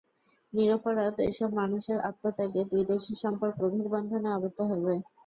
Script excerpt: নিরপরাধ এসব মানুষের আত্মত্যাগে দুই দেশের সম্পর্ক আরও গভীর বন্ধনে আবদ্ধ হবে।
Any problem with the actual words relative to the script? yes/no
yes